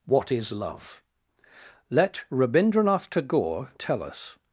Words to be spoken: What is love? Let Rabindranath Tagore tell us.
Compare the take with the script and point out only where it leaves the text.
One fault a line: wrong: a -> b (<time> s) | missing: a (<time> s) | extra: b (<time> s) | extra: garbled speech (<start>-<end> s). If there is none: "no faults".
no faults